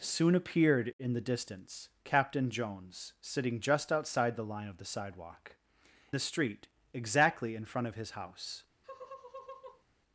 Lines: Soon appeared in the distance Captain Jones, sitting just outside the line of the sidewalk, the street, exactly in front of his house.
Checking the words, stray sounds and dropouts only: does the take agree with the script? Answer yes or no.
no